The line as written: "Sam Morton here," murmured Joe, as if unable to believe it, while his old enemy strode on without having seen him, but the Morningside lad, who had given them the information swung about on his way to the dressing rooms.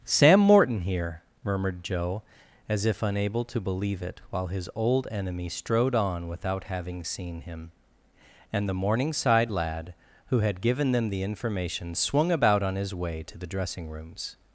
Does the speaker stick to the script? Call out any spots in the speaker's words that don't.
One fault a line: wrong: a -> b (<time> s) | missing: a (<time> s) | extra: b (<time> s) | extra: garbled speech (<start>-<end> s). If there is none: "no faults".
wrong: but -> and (8.5 s)